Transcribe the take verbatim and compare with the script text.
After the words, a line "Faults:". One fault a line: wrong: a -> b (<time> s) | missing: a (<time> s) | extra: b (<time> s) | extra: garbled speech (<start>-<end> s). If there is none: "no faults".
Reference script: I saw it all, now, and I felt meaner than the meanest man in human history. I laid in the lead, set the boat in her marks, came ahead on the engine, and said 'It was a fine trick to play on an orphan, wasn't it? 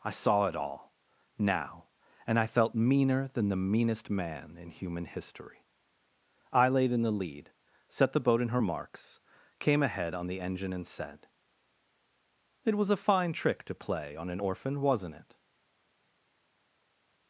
I saw it all, now, and I felt meaner than the meanest man in human history. I laid in the lead, set the boat in her marks, came ahead on the engine, and said 'It was a fine trick to play on an orphan, wasn't it?
Faults:
no faults